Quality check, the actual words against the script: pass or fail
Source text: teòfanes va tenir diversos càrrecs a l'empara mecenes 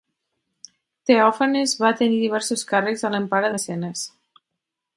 pass